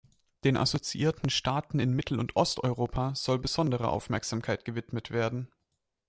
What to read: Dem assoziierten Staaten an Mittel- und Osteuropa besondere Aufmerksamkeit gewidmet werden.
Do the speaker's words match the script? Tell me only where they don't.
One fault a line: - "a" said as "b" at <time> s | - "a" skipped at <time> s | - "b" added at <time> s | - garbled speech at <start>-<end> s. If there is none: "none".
- "Dem" said as "Den" at 0.4 s
- "an" said as "in" at 1.8 s
- "soll" added at 3.1 s